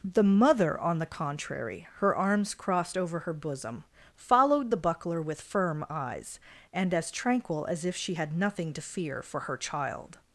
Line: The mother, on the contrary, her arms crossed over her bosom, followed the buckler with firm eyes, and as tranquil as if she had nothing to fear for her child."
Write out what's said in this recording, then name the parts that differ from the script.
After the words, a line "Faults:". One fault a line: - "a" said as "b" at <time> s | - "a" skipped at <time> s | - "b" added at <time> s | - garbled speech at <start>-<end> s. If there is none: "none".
The mother, on the contrary, her arms crossed over her bosom, followed the buckler with firm eyes, and as tranquil as if she had nothing to fear for her child."
Faults:
none